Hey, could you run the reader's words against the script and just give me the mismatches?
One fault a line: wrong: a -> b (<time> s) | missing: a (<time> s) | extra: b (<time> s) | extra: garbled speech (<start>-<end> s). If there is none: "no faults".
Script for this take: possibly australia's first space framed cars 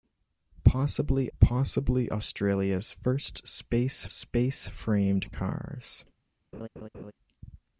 extra: possibly (1.4 s)
extra: space (4.1 s)